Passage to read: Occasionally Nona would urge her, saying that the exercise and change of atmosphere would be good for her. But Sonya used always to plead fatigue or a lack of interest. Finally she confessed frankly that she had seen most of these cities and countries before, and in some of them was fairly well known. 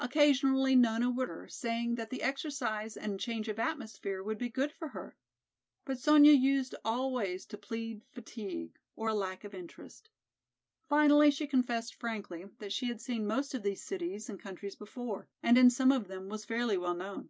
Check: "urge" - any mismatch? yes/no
yes